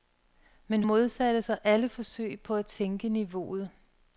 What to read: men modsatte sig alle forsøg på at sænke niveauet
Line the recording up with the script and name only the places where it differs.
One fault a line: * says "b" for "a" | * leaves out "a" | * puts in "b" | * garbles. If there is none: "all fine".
all fine